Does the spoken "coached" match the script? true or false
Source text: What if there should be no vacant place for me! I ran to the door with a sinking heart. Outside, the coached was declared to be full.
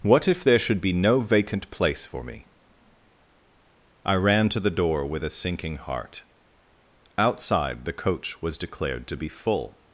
false